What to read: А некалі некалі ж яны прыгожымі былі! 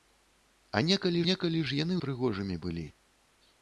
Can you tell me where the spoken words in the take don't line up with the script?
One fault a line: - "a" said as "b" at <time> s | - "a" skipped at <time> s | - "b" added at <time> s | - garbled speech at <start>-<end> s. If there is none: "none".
none